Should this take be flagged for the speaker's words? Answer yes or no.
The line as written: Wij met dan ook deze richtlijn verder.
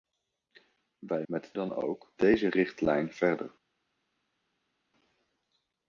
no